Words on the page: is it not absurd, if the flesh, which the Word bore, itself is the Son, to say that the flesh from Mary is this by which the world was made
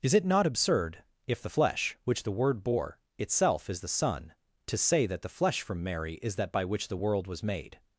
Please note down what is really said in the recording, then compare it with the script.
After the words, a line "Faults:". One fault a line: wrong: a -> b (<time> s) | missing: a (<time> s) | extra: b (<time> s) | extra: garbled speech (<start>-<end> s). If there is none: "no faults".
is it not absurd, if the flesh, which the Word bore, itself is the Son, to say that the flesh from Mary is that by which the world was made
Faults:
wrong: this -> that (6.3 s)